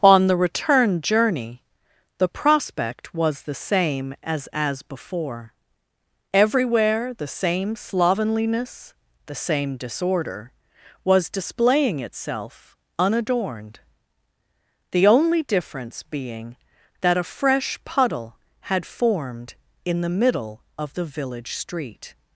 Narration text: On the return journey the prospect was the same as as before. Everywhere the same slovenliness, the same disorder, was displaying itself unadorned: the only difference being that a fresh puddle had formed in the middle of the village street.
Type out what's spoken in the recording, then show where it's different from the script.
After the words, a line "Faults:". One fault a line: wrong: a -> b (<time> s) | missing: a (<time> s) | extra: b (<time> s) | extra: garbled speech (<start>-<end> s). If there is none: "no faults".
On the return journey the prospect was the same as as before. Everywhere the same slovenliness, the same disorder, was displaying itself unadorned: the only difference being that a fresh puddle had formed in the middle of the village street.
Faults:
no faults